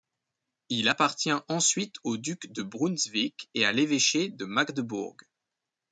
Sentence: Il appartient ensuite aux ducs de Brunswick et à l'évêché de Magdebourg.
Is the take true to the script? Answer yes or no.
yes